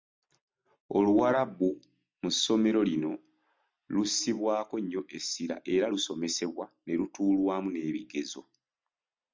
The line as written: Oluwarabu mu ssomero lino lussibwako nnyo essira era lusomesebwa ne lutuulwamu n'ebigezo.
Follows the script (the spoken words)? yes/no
yes